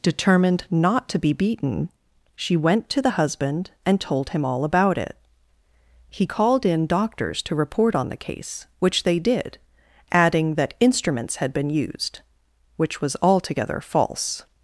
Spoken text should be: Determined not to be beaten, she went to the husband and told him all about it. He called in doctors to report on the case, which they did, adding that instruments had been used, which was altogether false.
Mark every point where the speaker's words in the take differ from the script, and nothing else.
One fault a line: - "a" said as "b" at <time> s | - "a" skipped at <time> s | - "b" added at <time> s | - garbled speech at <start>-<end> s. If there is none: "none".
none